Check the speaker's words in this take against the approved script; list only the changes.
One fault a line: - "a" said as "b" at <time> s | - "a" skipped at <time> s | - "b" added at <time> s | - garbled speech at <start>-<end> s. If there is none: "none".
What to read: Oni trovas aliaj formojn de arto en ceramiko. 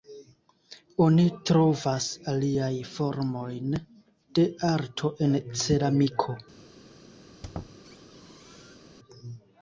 none